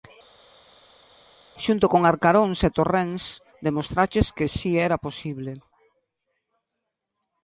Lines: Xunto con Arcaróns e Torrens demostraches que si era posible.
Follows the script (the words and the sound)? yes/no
yes